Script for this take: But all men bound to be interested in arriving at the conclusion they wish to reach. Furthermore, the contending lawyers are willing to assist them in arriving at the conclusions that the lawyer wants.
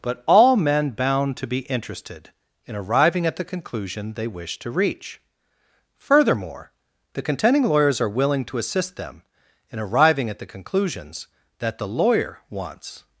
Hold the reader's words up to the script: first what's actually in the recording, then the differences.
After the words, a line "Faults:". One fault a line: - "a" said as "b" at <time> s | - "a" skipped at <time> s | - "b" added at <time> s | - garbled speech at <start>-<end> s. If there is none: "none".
But all men bound to be interested in arriving at the conclusion they wish to reach. Furthermore, the contending lawyers are willing to assist them in arriving at the conclusions that the lawyer wants.
Faults:
none